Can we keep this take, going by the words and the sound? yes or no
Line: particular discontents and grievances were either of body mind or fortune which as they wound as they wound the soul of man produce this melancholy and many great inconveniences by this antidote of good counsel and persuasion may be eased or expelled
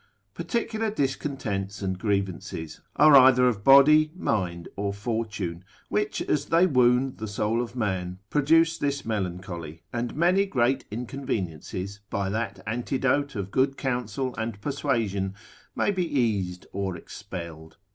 no